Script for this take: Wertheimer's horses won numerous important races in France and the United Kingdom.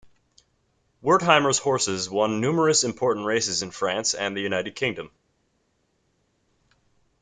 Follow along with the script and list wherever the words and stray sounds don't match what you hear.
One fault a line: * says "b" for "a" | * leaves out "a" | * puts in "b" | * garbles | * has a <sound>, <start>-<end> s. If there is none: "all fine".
all fine